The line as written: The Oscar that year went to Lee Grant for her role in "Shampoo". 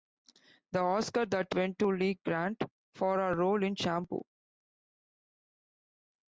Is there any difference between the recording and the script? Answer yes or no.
yes